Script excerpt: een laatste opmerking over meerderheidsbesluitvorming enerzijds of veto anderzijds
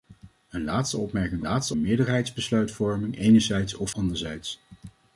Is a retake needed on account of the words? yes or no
yes